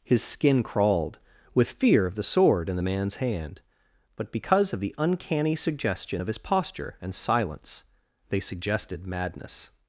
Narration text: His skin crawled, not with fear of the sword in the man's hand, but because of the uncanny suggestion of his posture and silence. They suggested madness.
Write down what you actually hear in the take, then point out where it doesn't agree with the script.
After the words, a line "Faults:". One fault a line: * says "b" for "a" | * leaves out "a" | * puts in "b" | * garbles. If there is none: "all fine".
His skin crawled, with fear of the sword in the man's hand, but because of the uncanny suggestion of his posture and silence. They suggested madness.
Faults:
* leaves out "not"